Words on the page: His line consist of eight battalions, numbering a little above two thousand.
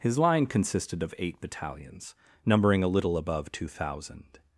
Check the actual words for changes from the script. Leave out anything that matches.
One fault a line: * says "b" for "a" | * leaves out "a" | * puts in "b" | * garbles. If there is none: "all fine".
* says "consisted" for "consist"